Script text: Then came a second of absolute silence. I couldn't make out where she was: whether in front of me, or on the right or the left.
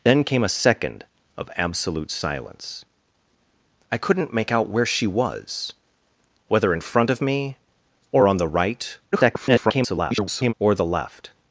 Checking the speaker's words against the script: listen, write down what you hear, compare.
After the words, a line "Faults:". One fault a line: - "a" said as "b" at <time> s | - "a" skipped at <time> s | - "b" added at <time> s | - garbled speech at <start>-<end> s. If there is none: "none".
Then came a second of absolute silence. I couldn't make out where she was: whether in front of me, or on the right [garbled] or the left.
Faults:
- garbled speech at 9.1-10.5 s